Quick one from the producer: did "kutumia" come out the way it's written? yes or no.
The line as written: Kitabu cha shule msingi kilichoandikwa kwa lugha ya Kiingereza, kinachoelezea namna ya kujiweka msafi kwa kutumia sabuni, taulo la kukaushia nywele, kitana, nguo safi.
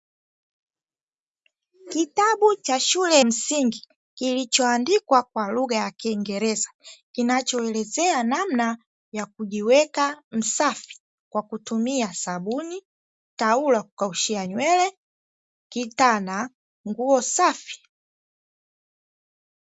yes